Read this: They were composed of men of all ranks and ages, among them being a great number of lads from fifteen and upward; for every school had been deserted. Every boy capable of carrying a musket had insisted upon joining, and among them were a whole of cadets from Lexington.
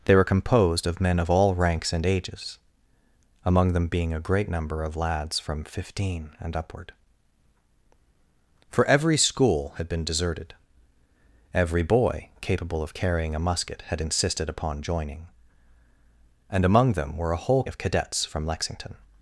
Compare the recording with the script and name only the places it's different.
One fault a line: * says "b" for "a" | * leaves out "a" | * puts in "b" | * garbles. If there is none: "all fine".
all fine